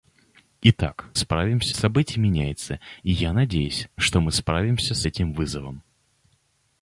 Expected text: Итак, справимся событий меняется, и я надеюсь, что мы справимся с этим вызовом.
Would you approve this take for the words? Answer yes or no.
yes